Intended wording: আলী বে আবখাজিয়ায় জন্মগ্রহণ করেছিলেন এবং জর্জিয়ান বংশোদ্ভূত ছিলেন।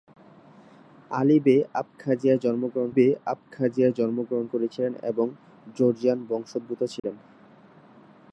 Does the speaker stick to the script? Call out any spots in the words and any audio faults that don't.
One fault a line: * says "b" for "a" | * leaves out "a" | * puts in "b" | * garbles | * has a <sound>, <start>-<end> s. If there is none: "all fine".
* puts in "বে আবখাজিয়ায় জন্মগ্রহণ"
* has a dropout, 7.0-7.0 s